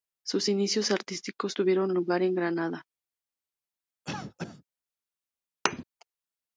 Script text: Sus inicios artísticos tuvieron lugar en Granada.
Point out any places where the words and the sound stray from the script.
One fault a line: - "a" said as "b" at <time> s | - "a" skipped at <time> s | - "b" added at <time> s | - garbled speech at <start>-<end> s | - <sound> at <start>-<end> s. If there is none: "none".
- cough at 4.1-4.6 s
- thud at 5.7-5.8 s